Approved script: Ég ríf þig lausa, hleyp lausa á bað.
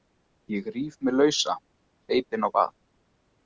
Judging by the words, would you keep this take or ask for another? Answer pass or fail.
fail